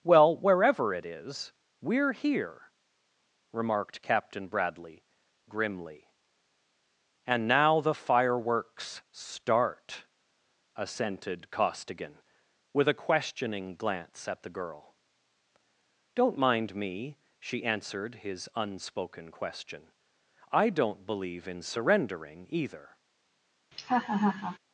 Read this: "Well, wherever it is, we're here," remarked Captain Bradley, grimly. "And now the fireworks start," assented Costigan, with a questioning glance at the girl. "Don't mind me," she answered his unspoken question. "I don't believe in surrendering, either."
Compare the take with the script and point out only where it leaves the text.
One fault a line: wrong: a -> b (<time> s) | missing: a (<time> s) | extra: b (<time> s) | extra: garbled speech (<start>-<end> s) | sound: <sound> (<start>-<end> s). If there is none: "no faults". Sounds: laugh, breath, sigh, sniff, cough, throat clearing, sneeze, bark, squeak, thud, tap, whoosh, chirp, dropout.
sound: laugh (23.7-24.6 s)